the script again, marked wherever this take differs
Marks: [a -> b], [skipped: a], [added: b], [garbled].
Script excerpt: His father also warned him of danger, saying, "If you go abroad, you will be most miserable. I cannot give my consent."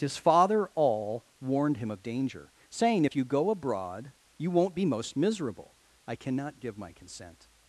His father [also -> all] warned him of danger, saying, "If you go abroad, you [will -> won't] be most miserable. I cannot give my consent."